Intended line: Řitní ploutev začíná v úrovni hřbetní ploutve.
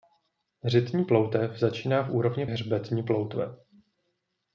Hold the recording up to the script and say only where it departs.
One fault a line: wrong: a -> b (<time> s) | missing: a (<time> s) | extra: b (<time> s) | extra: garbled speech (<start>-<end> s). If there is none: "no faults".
no faults